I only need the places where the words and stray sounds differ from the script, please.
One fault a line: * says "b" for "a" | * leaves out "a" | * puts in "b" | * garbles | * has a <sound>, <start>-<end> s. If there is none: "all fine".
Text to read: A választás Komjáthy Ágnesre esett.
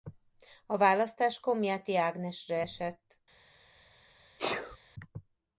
* has a sneeze, 4.4-4.8 s